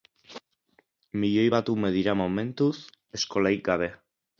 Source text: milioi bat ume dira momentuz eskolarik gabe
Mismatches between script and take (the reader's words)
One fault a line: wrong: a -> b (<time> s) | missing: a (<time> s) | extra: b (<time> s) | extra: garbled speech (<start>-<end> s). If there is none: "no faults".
no faults